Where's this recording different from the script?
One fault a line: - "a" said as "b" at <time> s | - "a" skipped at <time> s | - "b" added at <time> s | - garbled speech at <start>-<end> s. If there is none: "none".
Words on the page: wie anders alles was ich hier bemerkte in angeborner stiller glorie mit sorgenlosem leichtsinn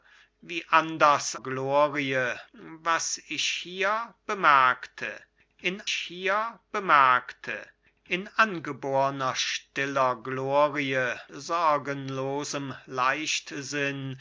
- "alles" said as "glorie" at 1.4 s
- "hier bemerkte in" added at 5.9 s
- "mit" skipped at 11.2 s